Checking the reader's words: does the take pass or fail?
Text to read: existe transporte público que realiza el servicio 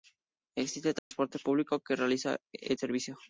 pass